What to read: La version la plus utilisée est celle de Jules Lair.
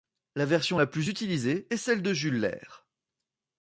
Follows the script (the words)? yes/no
yes